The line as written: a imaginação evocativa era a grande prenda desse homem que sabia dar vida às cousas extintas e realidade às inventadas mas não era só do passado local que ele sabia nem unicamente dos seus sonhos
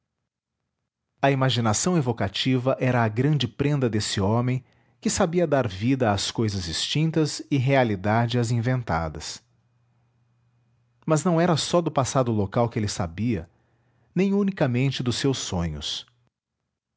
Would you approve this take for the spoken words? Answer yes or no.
yes